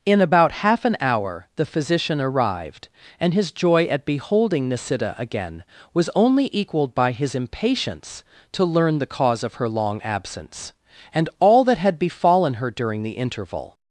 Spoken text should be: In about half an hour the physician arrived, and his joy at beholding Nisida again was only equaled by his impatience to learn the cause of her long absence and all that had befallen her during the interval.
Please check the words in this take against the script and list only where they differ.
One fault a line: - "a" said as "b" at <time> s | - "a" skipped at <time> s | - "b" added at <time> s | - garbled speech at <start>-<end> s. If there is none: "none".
none